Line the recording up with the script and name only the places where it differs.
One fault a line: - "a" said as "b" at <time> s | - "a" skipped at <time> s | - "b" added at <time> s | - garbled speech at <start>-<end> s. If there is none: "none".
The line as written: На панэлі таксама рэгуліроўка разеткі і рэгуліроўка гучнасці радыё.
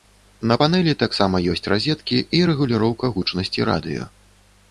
- "рэгуліроўка" said as "ёсць" at 1.5 s